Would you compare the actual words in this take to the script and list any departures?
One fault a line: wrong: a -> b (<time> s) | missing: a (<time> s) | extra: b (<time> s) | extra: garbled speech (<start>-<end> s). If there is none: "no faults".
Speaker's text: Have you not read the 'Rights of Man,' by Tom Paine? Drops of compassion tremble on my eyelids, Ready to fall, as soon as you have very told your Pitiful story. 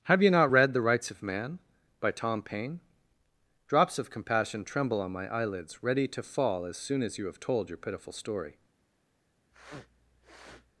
missing: very (7.4 s)